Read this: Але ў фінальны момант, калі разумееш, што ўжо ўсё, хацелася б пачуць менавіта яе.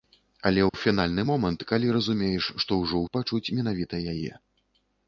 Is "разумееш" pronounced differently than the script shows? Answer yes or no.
no